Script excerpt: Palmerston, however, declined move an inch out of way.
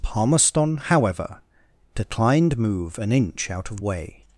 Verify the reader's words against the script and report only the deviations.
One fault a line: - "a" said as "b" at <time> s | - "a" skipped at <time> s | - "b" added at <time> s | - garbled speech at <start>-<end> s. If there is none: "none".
none